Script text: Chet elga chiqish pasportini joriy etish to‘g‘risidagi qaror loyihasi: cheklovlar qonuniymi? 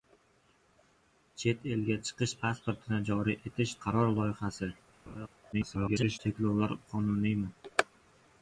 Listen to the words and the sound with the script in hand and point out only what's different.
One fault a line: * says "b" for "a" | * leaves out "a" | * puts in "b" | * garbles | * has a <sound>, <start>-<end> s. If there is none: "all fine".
* leaves out "to‘g‘risidagi"
* has a laugh, 5.1-5.3 s
* garbles